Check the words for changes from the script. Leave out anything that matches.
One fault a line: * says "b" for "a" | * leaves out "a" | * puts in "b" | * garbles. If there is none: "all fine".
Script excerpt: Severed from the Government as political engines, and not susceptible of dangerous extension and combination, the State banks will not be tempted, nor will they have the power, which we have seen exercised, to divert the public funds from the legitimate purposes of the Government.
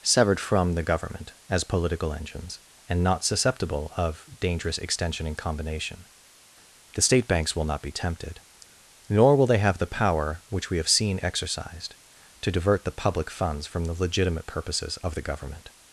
all fine